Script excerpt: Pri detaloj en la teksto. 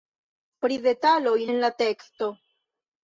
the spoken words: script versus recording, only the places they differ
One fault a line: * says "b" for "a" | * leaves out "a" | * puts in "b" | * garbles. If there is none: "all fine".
all fine